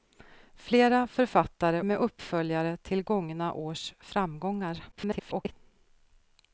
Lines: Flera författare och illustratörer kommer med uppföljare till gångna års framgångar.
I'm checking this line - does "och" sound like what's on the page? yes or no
no